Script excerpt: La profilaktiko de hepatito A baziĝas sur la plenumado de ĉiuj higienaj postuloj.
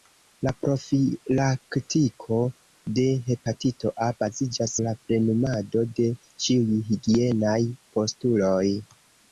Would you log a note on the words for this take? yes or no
yes